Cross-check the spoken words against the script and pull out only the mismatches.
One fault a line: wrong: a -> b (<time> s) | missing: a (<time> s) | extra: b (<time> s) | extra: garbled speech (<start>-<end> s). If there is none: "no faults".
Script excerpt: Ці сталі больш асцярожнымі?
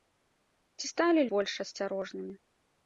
no faults